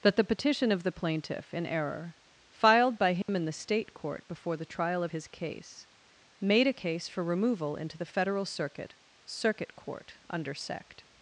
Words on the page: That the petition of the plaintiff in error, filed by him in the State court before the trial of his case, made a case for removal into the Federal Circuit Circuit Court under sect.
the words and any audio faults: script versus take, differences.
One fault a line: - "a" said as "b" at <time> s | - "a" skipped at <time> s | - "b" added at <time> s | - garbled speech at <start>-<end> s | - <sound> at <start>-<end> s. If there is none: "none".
- dropout at 3.2-3.3 s